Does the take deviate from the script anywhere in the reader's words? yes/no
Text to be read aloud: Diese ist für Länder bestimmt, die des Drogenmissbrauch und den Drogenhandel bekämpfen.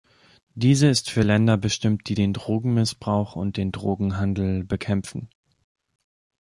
yes